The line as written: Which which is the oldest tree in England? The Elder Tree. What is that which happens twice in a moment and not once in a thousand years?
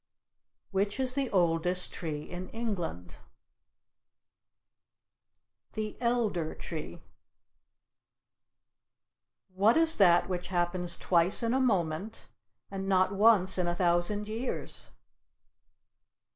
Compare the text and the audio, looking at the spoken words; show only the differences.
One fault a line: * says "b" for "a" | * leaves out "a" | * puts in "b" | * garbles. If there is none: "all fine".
* leaves out "which"